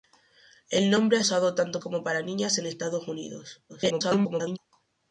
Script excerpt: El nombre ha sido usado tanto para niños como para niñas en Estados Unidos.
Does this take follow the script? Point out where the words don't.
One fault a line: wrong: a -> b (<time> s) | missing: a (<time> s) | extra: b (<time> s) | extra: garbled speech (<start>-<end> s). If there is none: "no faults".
missing: sido (1.2 s)
missing: para niños (1.8 s)
extra: garbled speech (3.7-4.6 s)